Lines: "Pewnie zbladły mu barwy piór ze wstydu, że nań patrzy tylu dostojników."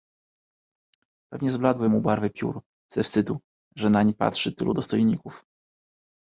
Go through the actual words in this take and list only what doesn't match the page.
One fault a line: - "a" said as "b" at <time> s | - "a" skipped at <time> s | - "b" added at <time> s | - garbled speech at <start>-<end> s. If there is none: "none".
none